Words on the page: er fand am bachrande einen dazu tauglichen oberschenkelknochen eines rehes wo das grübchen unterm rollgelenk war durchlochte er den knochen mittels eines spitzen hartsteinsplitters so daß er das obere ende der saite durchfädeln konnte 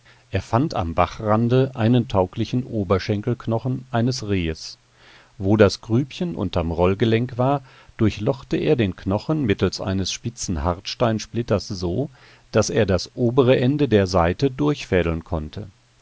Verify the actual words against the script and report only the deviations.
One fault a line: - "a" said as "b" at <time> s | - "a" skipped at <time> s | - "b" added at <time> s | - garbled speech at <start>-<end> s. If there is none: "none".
- "dazu" skipped at 2.0 s